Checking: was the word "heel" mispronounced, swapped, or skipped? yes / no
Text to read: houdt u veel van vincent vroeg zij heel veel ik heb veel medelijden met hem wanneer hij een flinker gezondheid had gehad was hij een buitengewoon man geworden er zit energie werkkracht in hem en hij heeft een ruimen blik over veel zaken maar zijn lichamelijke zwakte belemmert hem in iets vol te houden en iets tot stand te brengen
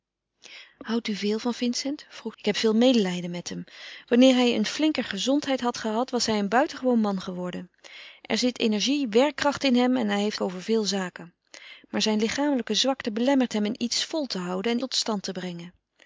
yes